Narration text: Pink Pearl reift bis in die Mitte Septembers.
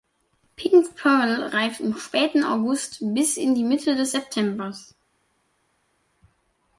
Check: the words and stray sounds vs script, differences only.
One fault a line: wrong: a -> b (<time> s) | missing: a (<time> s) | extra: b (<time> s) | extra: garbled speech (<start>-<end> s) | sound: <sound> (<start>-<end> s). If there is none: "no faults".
extra: im späten August (1.8 s)
extra: des (4.0 s)